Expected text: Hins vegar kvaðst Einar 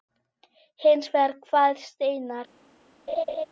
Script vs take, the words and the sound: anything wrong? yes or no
yes